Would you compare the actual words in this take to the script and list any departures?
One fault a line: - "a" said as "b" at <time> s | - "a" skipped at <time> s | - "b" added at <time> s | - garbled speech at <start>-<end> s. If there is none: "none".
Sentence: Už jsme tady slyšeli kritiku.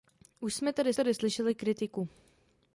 - "tady" added at 0.9 s